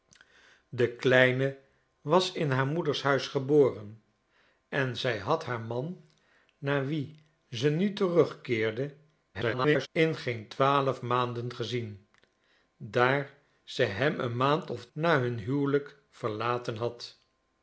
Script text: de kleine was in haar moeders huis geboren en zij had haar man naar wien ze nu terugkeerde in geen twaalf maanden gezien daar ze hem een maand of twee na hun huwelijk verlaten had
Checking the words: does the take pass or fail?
fail